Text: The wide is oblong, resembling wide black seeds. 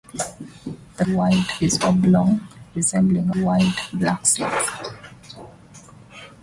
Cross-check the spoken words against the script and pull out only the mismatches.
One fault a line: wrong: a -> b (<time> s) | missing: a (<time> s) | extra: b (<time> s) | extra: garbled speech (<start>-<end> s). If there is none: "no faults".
no faults